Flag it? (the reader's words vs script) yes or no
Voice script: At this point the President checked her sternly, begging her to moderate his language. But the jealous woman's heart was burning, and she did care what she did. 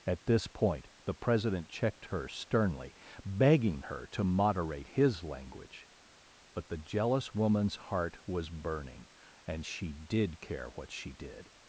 no